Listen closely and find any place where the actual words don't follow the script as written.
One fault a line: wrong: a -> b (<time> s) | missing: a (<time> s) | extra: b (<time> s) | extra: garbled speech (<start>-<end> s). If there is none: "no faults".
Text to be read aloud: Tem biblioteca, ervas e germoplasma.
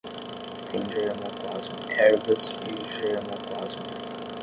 wrong: biblioteca -> germoplasma (0.9 s)